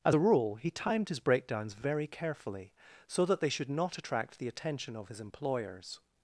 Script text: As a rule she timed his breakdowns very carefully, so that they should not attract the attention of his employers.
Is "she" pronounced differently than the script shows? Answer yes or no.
yes